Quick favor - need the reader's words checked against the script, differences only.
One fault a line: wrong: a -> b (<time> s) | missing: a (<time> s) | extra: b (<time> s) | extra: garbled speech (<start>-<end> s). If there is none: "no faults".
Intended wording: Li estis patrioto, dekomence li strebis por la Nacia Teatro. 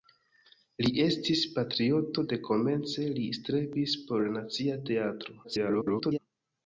extra: garbled speech (5.4-6.2 s)